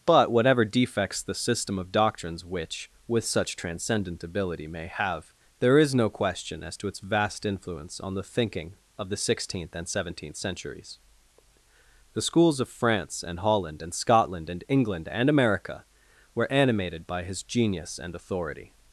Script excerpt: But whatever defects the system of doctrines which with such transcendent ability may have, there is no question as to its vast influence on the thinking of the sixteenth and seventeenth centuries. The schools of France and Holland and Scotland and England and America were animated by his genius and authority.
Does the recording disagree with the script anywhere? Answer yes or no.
no